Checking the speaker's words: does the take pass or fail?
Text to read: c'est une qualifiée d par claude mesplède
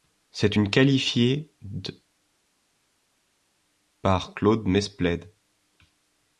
pass